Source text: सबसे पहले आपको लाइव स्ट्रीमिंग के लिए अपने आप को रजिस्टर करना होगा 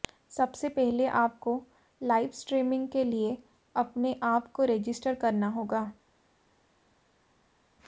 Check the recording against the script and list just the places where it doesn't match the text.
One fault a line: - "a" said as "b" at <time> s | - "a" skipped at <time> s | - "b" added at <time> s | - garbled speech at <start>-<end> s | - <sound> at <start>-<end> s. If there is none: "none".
none